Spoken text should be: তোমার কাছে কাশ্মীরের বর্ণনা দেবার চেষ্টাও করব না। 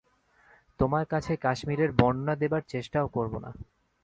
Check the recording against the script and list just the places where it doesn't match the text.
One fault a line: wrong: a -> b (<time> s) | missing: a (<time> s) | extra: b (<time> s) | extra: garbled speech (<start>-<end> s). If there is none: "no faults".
no faults